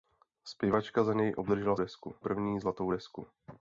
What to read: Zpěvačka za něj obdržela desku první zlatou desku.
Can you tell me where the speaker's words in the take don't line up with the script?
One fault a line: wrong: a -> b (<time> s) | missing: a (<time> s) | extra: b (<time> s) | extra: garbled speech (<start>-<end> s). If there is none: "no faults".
no faults